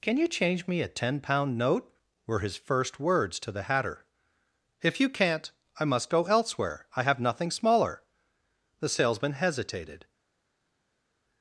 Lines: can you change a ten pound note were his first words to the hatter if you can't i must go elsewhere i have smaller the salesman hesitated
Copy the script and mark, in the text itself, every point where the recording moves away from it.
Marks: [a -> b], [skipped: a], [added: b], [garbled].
can you change [added: me] a ten pound note were his first words to the hatter if you can't i must go elsewhere i have [added: nothing] smaller the salesman hesitated